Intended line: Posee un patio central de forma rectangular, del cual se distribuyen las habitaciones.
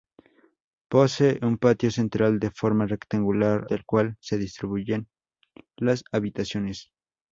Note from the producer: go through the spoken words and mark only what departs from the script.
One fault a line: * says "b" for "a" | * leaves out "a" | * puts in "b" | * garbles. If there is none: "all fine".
all fine